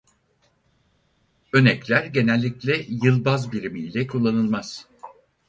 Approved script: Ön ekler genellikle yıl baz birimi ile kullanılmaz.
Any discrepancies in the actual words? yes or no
no